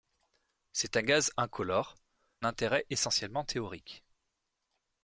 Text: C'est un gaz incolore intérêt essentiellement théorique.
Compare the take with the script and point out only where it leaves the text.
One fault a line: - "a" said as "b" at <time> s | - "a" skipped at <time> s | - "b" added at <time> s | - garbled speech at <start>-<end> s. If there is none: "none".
none